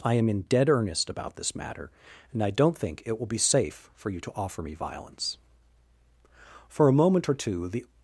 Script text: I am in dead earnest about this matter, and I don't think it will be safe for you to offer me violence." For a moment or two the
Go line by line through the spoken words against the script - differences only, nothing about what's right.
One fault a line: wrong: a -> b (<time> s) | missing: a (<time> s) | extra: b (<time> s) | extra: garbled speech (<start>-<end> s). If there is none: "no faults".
no faults